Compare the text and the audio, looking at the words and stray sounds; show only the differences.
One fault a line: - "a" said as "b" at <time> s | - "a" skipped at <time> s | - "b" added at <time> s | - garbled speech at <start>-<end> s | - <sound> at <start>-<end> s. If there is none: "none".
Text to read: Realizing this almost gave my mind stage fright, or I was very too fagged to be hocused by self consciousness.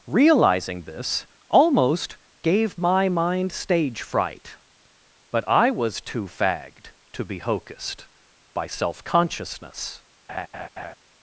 - "or" said as "but" at 5.3 s
- "very" skipped at 6.0 s
- laugh at 10.3-11.0 s